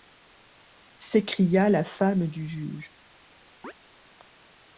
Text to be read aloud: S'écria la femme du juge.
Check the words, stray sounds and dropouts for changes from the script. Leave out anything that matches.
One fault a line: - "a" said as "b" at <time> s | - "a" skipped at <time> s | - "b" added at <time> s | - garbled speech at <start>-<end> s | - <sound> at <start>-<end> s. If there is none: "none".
- chirp at 3.6-3.7 s